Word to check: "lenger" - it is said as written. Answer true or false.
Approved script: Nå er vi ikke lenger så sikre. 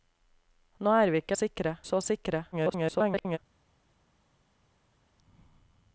false